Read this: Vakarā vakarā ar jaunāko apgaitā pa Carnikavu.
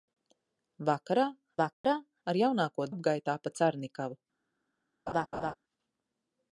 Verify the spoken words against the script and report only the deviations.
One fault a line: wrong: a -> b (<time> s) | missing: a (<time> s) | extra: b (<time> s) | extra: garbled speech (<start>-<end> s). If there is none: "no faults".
no faults